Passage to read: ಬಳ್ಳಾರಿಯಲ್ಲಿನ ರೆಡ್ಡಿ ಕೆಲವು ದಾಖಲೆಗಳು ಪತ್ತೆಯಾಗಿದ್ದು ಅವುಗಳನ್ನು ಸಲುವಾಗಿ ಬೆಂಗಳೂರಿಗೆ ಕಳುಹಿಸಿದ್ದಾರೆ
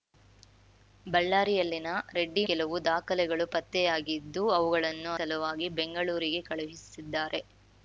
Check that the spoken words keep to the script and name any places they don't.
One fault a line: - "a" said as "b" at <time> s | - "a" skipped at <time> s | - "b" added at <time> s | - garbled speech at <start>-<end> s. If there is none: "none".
none